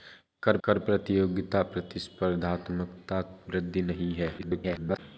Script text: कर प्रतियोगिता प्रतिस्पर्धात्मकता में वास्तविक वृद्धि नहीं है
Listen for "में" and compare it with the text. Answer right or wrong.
wrong